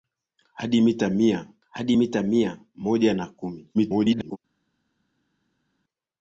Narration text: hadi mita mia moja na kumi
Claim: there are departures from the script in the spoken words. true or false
true